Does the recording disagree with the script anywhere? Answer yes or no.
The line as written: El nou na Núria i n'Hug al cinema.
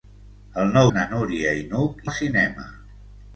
no